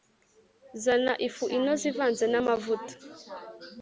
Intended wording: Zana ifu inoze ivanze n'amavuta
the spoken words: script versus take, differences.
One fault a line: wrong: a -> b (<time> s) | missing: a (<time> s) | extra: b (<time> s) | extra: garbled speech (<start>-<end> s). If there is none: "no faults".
no faults